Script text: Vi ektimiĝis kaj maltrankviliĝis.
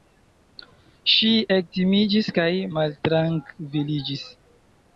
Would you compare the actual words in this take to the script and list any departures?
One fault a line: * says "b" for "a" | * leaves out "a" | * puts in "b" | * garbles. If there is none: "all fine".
* says "Ŝi" for "Vi"